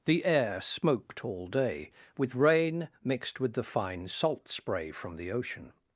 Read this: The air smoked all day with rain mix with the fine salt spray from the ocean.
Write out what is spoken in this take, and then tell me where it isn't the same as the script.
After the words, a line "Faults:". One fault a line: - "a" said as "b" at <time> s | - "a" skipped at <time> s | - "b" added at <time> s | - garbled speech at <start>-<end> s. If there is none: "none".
The air smoked all day with rain mixed with the fine salt spray from the ocean.
Faults:
- "mix" said as "mixed" at 3.0 s